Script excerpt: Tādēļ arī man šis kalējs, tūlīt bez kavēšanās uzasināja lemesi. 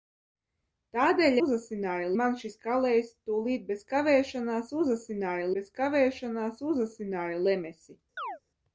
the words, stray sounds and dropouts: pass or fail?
fail